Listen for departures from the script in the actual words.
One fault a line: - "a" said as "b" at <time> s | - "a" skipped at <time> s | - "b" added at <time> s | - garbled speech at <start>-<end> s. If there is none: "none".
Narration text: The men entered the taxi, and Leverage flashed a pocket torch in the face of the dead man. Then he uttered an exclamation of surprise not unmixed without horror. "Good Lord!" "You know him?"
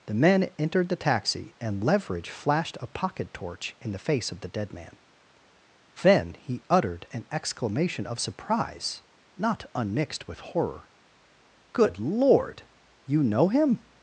- "without" said as "with" at 10.3 s